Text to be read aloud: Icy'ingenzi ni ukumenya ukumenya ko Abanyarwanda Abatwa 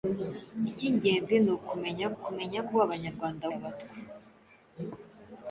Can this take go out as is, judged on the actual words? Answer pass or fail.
pass